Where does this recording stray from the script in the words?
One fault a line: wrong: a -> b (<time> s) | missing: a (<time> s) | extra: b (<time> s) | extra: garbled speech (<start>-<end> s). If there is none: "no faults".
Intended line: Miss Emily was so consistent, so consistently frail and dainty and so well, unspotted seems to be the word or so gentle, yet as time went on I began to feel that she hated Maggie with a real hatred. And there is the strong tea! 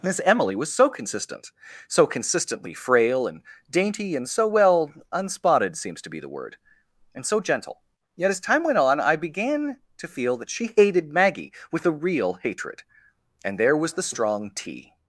wrong: or -> and (7.1 s)
wrong: is -> was (13.8 s)